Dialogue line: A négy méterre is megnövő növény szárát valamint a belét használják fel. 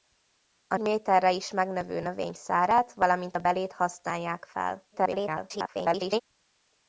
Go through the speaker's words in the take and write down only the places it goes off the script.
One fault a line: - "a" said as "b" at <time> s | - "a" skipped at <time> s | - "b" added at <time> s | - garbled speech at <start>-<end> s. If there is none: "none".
- "négy" skipped at 0.8 s
- garbled speech at 4.9-6.2 s